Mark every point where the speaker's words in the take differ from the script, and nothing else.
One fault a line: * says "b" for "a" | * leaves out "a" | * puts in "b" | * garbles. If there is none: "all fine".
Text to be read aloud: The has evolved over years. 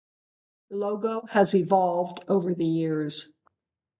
* puts in "logo"
* puts in "the"